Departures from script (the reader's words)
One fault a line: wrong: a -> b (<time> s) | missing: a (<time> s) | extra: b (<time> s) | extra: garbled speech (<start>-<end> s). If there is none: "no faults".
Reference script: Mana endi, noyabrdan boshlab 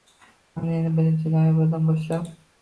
extra: birinchi (1.0 s)